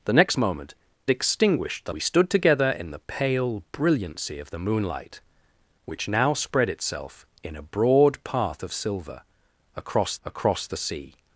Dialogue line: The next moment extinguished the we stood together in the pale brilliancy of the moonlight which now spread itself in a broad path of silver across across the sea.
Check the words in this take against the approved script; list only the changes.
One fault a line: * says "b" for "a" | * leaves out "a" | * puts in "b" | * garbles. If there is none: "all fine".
all fine